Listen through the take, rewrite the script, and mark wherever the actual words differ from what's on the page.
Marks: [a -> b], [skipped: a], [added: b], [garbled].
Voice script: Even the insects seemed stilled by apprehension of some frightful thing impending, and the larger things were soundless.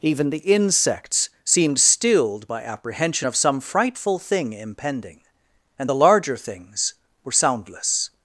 Even the insects seemed stilled by apprehension of some frightful thing impending, and the larger things were soundless.